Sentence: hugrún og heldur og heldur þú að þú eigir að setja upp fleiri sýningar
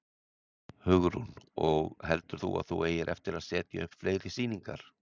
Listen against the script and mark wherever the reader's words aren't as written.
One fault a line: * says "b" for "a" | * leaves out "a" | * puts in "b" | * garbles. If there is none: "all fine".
* leaves out "og heldur"
* puts in "eftir"